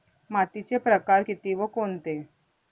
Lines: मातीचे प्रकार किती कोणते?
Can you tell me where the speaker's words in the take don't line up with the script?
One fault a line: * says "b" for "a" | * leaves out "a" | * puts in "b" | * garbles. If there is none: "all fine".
* puts in "व"